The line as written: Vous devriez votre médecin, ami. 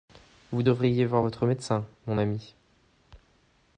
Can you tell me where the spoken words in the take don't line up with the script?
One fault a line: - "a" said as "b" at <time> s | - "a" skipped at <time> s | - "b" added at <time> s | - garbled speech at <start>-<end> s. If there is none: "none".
- "voir" added at 1.0 s
- "mon" added at 2.1 s